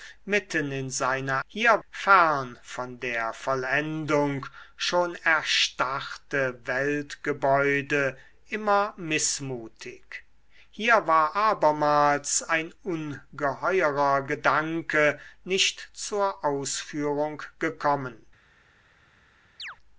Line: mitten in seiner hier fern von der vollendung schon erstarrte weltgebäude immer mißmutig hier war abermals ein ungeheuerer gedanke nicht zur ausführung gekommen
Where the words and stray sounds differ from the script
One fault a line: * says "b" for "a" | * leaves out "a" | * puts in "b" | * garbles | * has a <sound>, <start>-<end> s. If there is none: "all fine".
* has a chirp, 19.6-19.8 s